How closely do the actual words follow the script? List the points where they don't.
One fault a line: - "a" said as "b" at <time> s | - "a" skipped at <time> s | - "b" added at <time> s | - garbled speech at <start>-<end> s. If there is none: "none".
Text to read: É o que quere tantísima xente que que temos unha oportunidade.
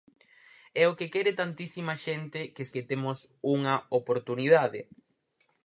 none